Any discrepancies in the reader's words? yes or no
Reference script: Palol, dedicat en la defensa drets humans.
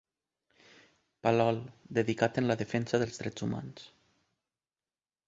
yes